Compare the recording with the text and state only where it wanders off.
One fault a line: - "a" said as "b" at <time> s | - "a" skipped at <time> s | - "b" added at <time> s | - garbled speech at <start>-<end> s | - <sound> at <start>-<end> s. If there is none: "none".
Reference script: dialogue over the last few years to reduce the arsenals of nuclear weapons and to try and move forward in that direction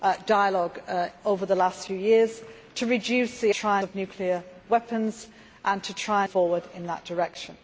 - "arsenals" said as "try" at 3.5 s
- "and move" skipped at 6.2 s